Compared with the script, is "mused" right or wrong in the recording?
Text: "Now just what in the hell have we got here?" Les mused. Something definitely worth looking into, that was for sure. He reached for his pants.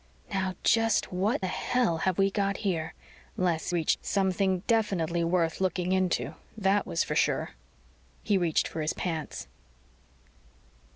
wrong